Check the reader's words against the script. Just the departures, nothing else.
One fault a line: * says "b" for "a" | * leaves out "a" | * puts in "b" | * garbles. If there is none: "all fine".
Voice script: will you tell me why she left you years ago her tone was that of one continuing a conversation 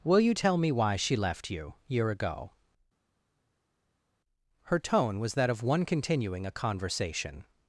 * says "year" for "years"